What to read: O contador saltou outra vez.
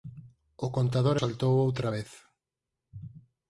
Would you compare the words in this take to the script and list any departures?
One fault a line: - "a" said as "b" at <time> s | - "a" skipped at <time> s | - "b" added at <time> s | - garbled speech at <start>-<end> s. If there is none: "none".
none